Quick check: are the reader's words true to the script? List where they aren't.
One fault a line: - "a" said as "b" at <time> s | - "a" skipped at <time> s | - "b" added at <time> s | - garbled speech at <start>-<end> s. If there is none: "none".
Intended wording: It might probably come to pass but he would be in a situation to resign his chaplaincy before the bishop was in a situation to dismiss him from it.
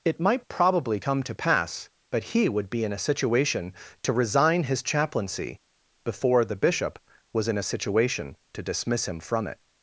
none